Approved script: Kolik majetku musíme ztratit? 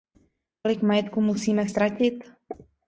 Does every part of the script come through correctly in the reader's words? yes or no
yes